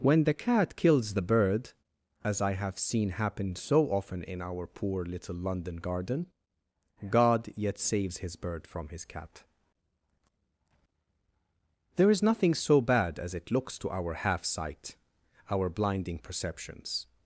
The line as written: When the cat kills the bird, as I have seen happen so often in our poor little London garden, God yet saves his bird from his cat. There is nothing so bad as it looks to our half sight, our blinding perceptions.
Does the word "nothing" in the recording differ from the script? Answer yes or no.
no